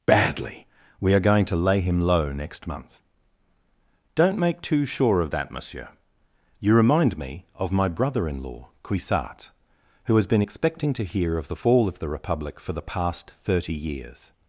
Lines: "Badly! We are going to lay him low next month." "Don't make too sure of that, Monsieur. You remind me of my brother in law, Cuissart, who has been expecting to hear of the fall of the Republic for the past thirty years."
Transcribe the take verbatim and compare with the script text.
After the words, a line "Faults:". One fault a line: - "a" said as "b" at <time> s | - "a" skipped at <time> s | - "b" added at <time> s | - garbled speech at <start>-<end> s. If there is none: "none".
"Badly! We are going to lay him low next month." "Don't make too sure of that, Monsieur. You remind me of my brother in law, Cuissart, who has been expecting to hear of the fall of the Republic for the past thirty years."
Faults:
none